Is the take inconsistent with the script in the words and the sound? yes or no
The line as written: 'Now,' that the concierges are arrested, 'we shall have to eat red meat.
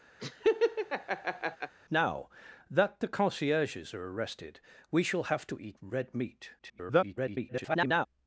yes